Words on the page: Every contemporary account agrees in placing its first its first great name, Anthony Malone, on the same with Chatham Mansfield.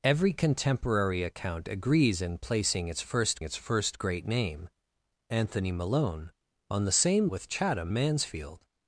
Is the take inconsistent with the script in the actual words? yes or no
no